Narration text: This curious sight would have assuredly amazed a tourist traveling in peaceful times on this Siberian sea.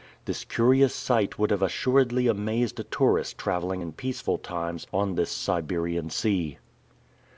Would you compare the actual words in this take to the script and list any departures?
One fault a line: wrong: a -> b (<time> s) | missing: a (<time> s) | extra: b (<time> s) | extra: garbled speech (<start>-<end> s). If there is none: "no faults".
no faults